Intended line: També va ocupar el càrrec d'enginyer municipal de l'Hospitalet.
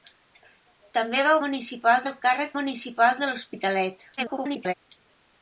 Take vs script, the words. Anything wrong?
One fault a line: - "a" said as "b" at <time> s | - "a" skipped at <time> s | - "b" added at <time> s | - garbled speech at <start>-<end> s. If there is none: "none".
- "ocupar" said as "municipal" at 1.5 s
- "d'enginyer" skipped at 2.5 s
- garbled speech at 4.2-4.7 s